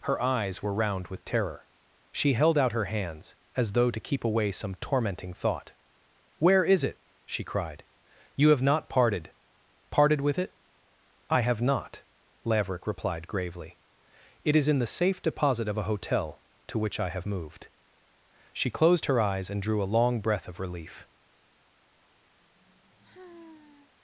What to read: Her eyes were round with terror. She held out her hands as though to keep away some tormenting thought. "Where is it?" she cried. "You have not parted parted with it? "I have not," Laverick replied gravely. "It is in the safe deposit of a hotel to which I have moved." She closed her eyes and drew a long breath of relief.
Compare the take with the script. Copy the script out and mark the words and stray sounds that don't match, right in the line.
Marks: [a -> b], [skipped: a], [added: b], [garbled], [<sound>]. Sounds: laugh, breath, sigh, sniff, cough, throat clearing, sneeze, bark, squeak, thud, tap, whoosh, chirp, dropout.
Her eyes were round with terror. She held out her hands as though to keep away some tormenting thought. "Where is it?" she cried. "You have not parted parted with it? "I have not," Laverick replied gravely. "It is in the safe deposit of a hotel to which I have moved." She closed her eyes and drew a long breath of relief. [sigh]